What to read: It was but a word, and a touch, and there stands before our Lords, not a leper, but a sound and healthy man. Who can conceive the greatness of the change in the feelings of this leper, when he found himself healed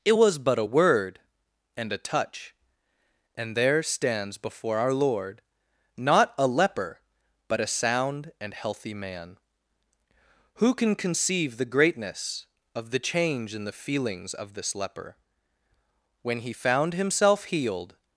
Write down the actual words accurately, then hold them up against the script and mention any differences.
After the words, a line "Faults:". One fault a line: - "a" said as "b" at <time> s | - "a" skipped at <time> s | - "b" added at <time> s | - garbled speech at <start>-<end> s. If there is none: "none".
It was but a word, and a touch, and there stands before our Lord, not a leper, but a sound and healthy man. Who can conceive the greatness of the change in the feelings of this leper, when he found himself healed
Faults:
- "Lords" said as "Lord" at 4.9 s